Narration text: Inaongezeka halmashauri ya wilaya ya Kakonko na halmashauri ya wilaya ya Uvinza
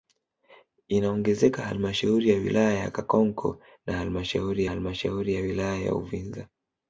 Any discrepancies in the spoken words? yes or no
yes